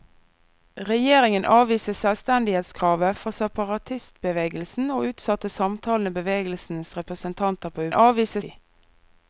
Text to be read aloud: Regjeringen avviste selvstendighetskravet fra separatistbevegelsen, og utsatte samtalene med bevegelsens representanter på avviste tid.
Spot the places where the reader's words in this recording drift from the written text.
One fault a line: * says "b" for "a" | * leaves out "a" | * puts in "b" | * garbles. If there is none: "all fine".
all fine